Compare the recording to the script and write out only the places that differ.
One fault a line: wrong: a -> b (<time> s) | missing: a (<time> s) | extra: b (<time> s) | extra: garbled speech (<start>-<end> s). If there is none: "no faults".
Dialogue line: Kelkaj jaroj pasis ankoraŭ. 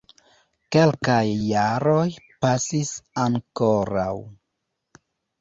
no faults